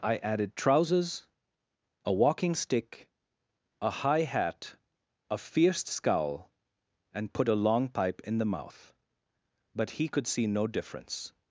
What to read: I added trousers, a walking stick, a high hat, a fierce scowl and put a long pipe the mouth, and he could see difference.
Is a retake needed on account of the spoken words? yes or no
yes